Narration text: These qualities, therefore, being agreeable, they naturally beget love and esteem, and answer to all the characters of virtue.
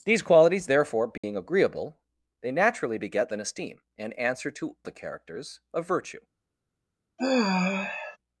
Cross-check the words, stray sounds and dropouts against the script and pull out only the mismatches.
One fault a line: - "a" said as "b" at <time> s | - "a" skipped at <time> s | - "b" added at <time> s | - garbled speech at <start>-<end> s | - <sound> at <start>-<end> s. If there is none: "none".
- dropout at 1.2-1.2 s
- "love" skipped at 3.3 s
- "all" skipped at 4.8 s
- sigh at 7.2-8.2 s